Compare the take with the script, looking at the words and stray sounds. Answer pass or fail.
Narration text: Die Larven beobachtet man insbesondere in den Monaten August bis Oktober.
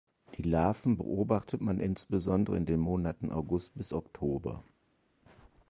pass